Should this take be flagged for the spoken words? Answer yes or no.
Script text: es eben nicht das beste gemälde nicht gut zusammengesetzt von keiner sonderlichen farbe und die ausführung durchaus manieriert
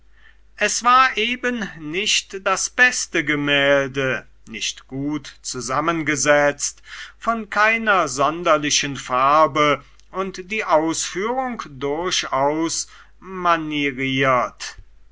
yes